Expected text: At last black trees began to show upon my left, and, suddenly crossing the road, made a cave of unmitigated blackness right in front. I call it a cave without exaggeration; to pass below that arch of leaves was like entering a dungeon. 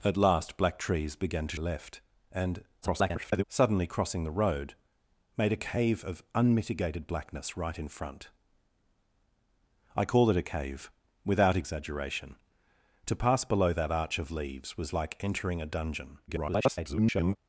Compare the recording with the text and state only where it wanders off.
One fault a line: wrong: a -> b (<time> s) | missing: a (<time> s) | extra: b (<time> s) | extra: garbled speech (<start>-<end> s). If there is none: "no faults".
missing: show upon my (1.6 s)
extra: garbled speech (2.8-3.4 s)
extra: garbled speech (16.3-17.4 s)